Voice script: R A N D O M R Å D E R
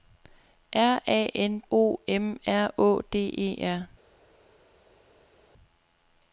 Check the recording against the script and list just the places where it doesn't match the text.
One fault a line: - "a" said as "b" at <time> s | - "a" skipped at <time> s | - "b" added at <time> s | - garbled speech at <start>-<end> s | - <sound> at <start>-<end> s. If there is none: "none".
- "D" skipped at 1.6 s